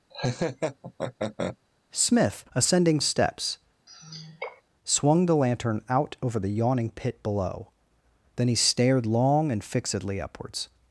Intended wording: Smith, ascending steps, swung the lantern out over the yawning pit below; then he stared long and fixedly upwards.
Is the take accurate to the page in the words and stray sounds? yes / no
no